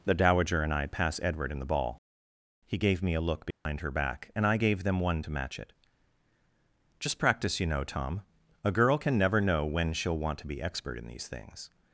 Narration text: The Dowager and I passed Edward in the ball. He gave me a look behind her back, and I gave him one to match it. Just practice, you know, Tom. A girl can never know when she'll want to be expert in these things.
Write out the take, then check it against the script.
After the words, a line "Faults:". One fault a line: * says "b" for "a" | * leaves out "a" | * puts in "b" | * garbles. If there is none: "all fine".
The Dowager and I pass Edward in the ball. He gave me a look behind her back, and I gave them one to match it. Just practice, you know, Tom. A girl can never know when she'll want to be expert in these things.
Faults:
* says "pass" for "passed"
* says "them" for "him"